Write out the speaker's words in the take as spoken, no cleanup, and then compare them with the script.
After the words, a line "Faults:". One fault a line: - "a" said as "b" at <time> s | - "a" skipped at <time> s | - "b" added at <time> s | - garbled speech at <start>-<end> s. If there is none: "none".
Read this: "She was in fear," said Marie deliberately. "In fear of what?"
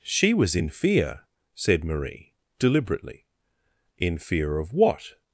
"She was in fear," said Marie deliberately. "In fear of what?"
Faults:
none